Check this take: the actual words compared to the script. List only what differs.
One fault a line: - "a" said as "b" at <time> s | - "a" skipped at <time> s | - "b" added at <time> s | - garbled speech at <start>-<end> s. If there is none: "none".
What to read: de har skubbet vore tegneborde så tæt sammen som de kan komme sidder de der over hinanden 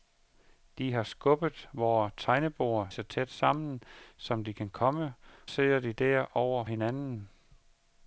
none